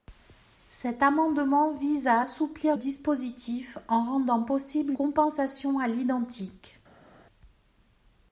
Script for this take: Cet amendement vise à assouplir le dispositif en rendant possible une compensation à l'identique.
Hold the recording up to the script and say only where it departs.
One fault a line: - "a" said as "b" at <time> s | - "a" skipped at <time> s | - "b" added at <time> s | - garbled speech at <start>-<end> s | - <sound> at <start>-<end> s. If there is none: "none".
- "le" skipped at 2.8 s
- "une" skipped at 4.9 s